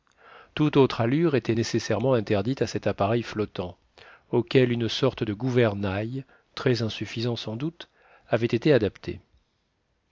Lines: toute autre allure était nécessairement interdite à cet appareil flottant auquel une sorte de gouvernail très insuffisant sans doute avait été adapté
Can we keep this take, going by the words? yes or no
yes